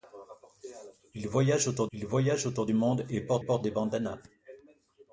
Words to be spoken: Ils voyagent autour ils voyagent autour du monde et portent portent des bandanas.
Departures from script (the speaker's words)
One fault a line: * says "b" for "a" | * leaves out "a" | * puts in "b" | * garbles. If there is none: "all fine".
all fine